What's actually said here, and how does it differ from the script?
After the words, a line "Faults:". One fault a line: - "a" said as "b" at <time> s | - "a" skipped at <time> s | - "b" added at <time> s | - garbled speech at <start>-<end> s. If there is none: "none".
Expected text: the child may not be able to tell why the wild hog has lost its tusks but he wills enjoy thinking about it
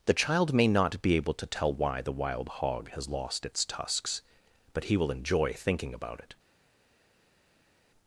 the child may not be able to tell why the wild hog has lost its tusks but he will enjoy thinking about it
Faults:
- "wills" said as "will" at 5.0 s